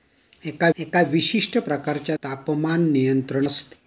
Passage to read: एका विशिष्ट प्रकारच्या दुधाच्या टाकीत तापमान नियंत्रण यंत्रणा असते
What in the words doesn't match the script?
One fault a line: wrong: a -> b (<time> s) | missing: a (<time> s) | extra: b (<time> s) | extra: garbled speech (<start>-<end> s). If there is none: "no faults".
extra: एका (0.8 s)
missing: दुधाच्या टाकीत (2.2 s)
missing: यंत्रणा (3.5 s)